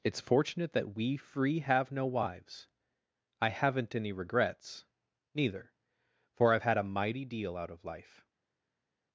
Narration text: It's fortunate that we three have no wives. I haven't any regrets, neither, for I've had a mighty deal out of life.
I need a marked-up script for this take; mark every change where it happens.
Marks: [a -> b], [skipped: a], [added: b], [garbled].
It's fortunate that we [three -> free] have no wives. I haven't any regrets, neither, for I've had a mighty deal out of life.